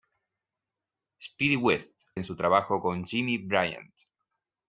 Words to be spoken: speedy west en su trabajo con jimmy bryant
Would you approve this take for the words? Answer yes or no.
yes